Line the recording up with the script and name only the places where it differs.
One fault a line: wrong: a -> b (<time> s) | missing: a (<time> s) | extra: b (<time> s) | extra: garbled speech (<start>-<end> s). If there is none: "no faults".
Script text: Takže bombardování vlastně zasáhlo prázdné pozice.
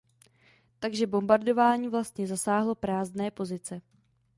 no faults